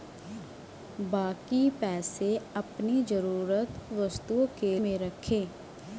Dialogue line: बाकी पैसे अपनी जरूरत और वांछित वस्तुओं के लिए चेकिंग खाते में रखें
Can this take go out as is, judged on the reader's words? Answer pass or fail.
fail